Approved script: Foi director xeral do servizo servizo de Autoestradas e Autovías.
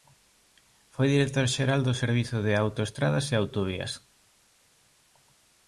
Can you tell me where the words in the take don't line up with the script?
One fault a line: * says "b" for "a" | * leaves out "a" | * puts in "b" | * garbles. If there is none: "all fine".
* leaves out "servizo"